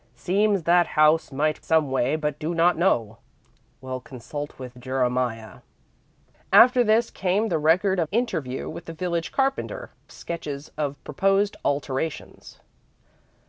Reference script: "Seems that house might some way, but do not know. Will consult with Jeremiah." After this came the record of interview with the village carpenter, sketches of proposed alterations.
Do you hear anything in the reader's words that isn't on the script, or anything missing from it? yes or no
no